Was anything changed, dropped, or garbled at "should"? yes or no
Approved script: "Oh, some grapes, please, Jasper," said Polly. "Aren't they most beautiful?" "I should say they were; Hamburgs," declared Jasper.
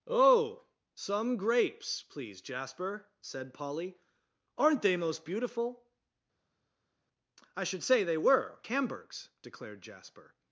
no